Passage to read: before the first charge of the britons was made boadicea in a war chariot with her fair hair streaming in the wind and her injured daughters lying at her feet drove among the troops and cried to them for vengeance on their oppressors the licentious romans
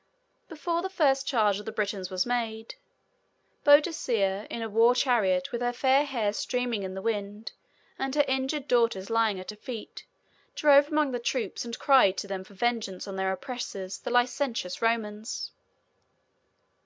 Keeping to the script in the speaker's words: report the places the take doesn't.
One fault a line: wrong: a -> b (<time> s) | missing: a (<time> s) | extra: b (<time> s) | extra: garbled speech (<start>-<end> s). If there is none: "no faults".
no faults